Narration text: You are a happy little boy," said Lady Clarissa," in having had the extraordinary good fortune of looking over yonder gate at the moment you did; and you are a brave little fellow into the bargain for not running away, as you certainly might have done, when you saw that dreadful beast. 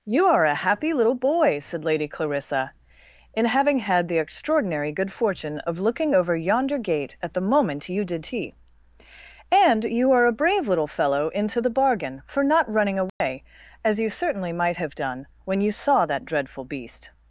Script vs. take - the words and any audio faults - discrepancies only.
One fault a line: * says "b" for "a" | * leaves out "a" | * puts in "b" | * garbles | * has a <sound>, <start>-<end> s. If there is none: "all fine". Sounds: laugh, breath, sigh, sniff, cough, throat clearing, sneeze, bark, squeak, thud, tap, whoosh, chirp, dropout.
* puts in "tea"
* has a dropout, 13.1-13.2 s